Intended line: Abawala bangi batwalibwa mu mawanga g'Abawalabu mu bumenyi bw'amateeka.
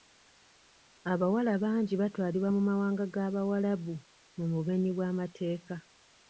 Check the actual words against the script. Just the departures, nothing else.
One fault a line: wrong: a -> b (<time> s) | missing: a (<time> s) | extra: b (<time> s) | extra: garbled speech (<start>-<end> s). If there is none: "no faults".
no faults